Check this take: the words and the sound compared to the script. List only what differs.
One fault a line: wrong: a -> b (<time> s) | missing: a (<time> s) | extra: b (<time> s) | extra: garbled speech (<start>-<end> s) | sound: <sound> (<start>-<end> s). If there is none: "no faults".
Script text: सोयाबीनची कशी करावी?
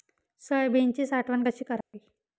extra: साठवण (1.1 s)
sound: dropout (1.8-1.9 s)